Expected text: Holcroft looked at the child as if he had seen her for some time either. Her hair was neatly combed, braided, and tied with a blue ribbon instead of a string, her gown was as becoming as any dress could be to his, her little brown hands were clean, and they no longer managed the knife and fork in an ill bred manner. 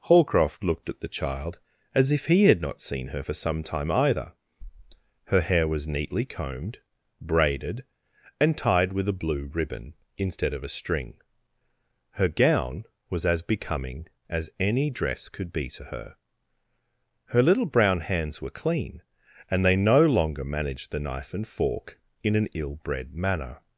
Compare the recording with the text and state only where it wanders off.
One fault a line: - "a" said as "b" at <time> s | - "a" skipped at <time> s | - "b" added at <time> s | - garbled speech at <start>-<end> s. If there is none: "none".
- "not" added at 2.6 s
- "his" said as "her" at 15.8 s